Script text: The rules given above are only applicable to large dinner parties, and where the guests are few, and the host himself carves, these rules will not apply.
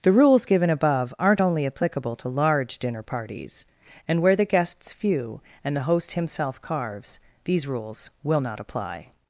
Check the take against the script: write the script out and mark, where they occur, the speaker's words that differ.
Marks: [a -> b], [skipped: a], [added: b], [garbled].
The rules given above [are -> aren't] only applicable to large dinner parties, and where the guests [skipped: are] few, and the host himself carves, these rules will not apply.